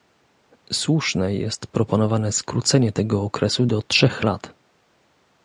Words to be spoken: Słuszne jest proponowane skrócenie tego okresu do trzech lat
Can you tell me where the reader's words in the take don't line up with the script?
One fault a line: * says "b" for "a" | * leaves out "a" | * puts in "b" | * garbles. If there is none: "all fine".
all fine